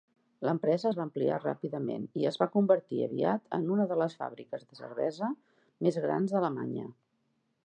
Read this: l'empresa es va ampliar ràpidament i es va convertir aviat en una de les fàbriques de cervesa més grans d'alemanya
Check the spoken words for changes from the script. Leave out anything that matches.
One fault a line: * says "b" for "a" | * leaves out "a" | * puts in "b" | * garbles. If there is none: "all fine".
all fine